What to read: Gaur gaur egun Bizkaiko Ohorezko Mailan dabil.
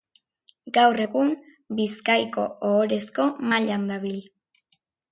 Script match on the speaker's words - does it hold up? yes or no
no